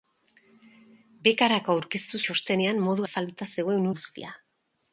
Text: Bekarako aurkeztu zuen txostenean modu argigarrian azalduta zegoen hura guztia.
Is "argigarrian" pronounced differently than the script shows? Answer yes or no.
yes